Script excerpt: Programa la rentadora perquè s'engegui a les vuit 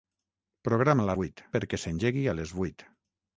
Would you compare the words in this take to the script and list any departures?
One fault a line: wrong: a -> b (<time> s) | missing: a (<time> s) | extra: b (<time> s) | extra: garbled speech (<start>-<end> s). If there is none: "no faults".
wrong: rentadora -> vuit (1.2 s)